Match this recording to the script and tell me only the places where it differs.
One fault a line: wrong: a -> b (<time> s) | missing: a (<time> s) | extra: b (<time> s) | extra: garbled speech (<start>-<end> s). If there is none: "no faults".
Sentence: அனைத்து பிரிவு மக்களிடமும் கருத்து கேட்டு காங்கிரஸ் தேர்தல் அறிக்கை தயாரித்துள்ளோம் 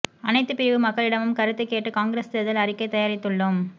no faults